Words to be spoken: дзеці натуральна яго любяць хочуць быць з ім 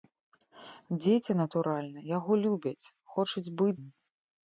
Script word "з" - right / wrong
wrong